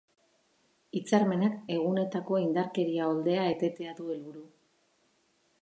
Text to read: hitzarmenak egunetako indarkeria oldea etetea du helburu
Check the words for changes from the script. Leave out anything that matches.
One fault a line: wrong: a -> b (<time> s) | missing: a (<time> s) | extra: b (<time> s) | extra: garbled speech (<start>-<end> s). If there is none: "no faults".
no faults